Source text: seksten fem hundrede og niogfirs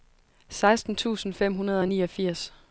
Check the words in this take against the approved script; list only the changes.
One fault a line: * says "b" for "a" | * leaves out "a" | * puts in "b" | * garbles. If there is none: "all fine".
* puts in "tusind"